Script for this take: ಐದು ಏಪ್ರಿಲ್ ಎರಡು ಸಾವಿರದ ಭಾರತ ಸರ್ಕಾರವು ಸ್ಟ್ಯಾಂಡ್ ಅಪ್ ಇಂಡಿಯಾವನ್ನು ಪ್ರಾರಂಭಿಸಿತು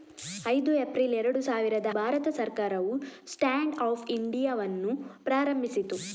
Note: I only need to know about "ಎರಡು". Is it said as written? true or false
true